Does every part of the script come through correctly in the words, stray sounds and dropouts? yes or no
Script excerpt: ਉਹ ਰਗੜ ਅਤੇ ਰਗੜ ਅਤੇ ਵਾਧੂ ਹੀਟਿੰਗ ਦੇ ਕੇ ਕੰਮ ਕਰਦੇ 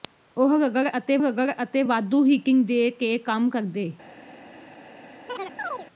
no